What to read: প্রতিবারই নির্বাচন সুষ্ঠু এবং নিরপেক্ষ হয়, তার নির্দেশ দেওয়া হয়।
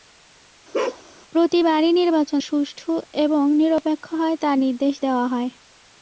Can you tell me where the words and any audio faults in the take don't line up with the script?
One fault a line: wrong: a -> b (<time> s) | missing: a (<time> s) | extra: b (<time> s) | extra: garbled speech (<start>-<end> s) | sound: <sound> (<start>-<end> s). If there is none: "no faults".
sound: bark (0.7-1.0 s)